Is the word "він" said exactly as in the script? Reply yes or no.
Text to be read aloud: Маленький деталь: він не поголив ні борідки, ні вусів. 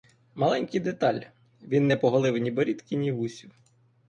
yes